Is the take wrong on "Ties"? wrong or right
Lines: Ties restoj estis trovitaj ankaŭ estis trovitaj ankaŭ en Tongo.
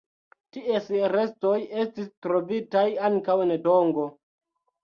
right